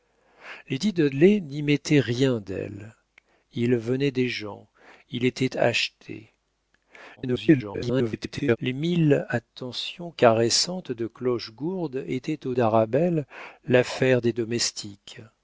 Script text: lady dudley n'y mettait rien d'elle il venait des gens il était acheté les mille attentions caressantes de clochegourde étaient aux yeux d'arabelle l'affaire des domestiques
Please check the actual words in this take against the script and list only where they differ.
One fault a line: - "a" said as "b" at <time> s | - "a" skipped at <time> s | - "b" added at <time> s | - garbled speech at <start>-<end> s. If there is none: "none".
- garbled speech at 7.2-8.6 s
- "yeux" skipped at 12.5 s